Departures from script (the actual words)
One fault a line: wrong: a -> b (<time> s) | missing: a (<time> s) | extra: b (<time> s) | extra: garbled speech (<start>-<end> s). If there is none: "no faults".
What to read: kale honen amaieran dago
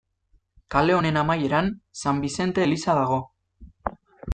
extra: san bizente eliza (2.0 s)